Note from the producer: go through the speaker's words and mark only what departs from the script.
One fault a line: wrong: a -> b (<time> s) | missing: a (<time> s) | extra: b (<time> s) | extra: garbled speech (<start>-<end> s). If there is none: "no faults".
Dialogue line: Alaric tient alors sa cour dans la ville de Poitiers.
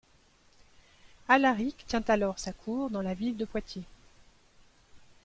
no faults